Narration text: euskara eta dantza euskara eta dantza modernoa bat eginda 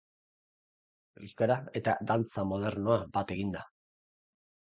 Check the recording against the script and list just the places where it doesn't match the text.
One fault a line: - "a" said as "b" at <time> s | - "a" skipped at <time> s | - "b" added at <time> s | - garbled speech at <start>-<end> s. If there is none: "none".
- "euskara eta dantza" skipped at 2.5 s